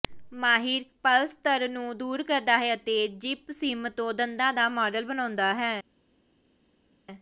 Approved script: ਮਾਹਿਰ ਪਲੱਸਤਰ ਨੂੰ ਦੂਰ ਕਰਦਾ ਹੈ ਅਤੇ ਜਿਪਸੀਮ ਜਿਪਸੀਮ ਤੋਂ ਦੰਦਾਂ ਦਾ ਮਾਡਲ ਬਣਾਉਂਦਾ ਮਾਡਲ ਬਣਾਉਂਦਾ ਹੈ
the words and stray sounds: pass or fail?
fail